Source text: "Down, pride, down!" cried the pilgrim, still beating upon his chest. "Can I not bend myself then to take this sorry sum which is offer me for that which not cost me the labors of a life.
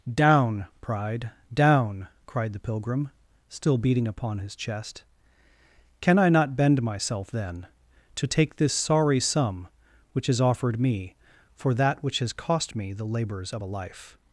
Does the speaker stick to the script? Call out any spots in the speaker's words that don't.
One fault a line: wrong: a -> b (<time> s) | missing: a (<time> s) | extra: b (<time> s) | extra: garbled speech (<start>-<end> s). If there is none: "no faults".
wrong: offer -> offered (10.4 s)
wrong: not -> has (12.2 s)